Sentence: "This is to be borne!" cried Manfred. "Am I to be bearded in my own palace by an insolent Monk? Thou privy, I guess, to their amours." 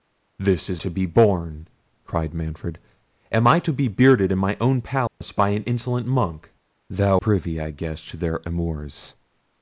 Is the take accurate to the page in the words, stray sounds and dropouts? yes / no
no